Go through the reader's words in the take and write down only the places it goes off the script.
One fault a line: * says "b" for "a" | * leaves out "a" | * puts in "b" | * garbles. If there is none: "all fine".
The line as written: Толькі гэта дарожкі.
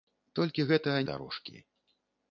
all fine